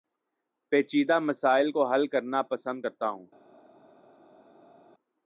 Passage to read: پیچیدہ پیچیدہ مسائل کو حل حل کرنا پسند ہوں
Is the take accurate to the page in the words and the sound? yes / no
no